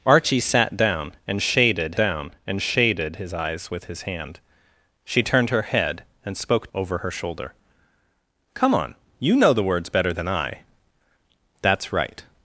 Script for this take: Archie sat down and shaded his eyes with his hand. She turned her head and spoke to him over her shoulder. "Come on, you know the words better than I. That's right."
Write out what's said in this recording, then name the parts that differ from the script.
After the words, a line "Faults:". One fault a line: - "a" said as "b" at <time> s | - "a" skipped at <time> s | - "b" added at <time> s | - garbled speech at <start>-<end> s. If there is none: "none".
Archie sat down and shaded down and shaded his eyes with his hand. She turned her head and spoke over her shoulder. "Come on, you know the words better than I. That's right."
Faults:
- "down and shaded" added at 1.9 s
- "to him" skipped at 6.7 s